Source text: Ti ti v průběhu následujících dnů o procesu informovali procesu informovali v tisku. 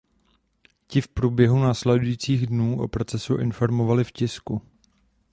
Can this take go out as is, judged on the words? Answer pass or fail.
fail